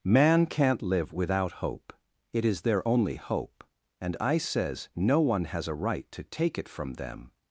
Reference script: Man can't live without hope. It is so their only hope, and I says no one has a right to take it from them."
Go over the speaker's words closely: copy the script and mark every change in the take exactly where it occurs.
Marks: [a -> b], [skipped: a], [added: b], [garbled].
Man can't live without hope. It is [skipped: so] their only hope, and I says no one has a right to take it from them."